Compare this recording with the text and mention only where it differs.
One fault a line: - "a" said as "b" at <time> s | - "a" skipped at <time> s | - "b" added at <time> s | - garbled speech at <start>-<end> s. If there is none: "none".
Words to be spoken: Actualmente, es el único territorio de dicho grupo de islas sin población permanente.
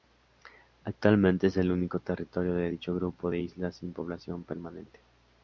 none